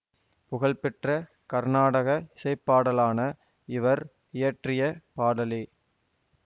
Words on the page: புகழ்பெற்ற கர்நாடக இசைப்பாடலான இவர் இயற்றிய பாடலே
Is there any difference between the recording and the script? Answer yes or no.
no